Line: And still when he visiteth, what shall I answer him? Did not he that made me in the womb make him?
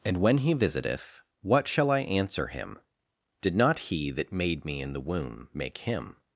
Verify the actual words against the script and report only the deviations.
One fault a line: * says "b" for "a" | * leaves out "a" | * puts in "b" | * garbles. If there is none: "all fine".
* leaves out "still"